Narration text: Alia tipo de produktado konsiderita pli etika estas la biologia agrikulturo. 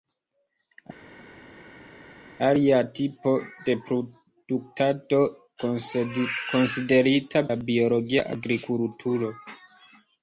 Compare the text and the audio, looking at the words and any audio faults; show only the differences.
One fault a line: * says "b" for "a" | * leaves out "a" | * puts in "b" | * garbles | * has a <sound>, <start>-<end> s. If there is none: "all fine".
* leaves out "pli etika estas"